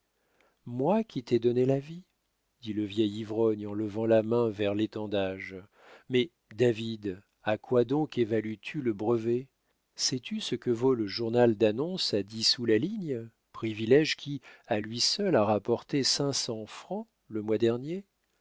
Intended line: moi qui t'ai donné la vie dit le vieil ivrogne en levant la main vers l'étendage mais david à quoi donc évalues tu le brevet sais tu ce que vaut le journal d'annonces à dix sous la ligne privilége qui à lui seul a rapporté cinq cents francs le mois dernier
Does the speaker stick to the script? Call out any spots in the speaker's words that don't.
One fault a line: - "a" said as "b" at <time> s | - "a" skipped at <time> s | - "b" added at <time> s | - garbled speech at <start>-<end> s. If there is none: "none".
none